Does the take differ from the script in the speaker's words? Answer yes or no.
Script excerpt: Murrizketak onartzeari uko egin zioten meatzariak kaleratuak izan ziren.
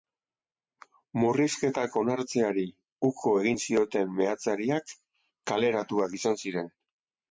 no